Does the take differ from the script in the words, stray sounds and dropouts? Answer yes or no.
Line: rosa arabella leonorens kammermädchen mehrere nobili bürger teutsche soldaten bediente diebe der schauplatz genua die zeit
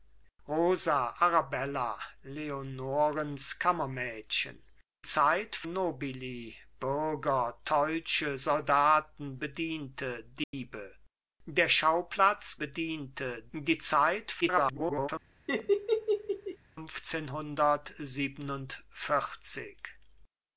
yes